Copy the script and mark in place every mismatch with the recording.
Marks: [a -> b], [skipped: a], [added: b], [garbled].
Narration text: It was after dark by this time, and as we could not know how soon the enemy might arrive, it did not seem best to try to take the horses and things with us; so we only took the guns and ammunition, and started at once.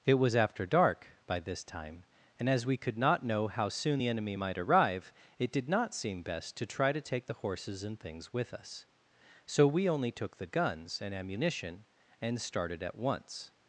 It was after dark by this time, and as we could not know how soon the enemy might arrive, it did not seem best to try to take the horses and things with us; so we only took the guns and ammunition, and started at once.